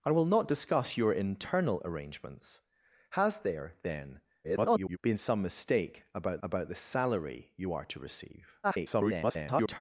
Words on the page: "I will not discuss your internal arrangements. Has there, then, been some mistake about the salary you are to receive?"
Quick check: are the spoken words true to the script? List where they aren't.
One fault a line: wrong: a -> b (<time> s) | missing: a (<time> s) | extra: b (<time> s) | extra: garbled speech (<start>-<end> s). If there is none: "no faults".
extra: garbled speech (4.4-5.0 s)
extra: about (6.4 s)
extra: garbled speech (8.6-9.8 s)